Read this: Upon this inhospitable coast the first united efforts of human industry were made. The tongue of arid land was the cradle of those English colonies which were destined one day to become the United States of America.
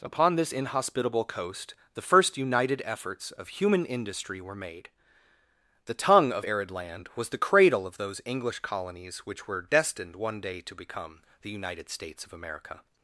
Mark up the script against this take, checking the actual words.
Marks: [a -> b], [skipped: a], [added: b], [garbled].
Upon this inhospitable coast the first united efforts of human industry were made. The tongue of arid land was the cradle of those English colonies which were destined one day to become the United States of America.